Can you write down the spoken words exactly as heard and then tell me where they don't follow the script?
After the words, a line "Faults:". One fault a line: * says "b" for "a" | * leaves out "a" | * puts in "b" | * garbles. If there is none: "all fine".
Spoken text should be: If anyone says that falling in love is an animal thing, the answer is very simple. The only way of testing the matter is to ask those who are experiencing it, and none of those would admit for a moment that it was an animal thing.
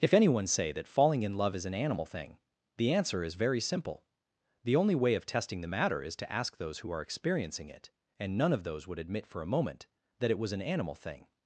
If anyone say that falling in love is an animal thing, the answer is very simple. The only way of testing the matter is to ask those who are experiencing it, and none of those would admit for a moment that it was an animal thing.
Faults:
* says "say" for "says"